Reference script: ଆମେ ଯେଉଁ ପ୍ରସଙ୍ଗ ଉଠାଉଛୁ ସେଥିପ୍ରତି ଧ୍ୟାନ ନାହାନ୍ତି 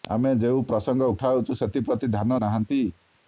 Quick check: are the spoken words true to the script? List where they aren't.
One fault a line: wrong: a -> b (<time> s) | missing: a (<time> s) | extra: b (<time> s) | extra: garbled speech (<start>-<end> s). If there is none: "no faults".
no faults